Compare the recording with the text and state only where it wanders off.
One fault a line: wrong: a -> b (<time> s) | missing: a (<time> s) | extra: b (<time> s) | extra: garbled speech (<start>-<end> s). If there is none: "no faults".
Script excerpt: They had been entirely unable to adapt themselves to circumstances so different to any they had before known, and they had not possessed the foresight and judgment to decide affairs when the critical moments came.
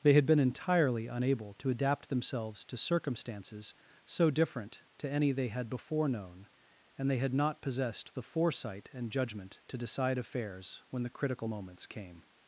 no faults